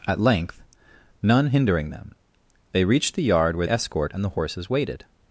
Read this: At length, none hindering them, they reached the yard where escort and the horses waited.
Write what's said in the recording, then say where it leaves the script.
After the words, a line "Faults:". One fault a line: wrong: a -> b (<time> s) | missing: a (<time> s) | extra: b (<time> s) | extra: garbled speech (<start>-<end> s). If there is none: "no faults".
At length, none hindering them, they reached the yard where escort and the horses waited.
Faults:
no faults